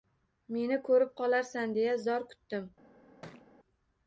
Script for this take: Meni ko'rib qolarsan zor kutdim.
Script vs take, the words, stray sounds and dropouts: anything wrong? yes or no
yes